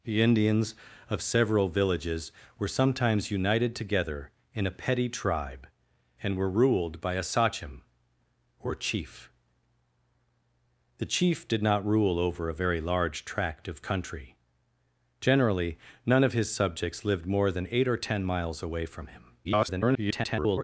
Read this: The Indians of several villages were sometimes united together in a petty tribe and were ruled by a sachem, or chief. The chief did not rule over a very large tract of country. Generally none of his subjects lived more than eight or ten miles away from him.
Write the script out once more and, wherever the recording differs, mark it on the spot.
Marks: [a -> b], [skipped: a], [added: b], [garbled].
The Indians of several villages were sometimes united together in a petty tribe and were ruled by a sachem, or chief. The chief did not rule over a very large tract of country. Generally none of his subjects lived more than eight or ten miles away from him. [garbled]